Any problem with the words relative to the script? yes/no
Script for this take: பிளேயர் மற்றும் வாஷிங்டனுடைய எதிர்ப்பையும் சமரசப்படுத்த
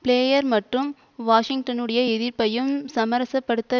no